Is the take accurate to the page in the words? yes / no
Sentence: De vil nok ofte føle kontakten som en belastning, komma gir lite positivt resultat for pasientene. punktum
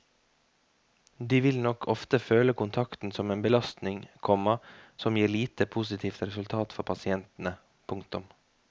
no